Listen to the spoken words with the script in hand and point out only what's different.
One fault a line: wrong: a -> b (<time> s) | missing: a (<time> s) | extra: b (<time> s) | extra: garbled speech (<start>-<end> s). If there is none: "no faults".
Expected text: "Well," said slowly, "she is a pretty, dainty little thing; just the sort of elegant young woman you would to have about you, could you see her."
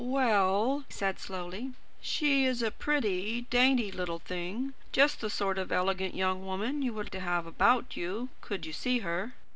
no faults